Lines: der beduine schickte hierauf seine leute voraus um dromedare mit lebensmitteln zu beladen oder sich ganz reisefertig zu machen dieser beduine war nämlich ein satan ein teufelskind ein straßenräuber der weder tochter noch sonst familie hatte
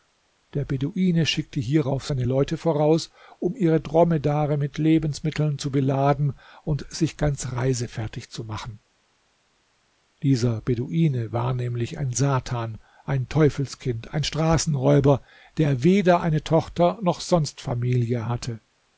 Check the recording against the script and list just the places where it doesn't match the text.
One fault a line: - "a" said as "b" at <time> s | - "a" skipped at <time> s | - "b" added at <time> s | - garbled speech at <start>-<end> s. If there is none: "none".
- "ihre" added at 3.5 s
- "oder" said as "und" at 6.6 s
- "eine" added at 16.2 s